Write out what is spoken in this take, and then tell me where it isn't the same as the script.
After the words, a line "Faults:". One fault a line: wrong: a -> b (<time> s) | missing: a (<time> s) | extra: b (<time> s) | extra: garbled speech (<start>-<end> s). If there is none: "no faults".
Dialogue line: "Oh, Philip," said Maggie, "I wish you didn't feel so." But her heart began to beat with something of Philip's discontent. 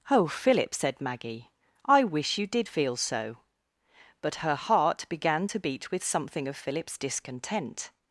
"Oh, Philip," said Maggie, "I wish you did feel so." But her heart began to beat with something of Philip's discontent.
Faults:
wrong: didn't -> did (2.5 s)